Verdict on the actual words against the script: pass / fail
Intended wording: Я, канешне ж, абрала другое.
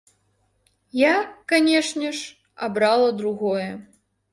pass